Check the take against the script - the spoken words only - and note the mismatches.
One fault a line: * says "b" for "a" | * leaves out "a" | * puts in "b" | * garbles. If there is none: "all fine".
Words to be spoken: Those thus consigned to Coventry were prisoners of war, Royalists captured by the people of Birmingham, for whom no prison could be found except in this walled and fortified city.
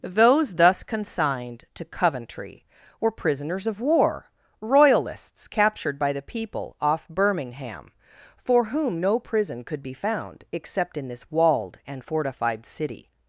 * says "off" for "of"